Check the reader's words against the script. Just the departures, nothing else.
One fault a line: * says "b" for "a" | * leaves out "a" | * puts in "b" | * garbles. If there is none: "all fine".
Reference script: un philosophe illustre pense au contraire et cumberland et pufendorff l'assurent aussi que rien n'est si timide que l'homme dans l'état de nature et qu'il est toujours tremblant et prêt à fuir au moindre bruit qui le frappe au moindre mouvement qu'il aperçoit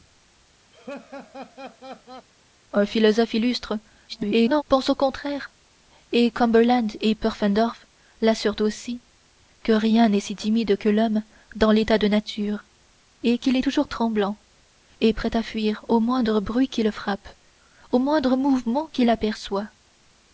* garbles